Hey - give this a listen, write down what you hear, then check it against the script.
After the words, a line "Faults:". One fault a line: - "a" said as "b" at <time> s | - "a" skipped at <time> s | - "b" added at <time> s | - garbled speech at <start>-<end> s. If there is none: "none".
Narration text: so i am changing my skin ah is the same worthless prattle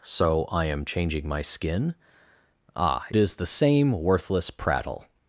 so i am changing my skin ah is the same worthless prattle
Faults:
none